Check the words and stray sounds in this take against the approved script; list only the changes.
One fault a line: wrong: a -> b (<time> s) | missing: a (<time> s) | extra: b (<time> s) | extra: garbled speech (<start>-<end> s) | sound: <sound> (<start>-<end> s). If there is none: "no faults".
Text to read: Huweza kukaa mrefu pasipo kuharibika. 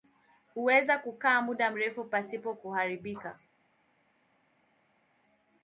extra: muda (1.4 s)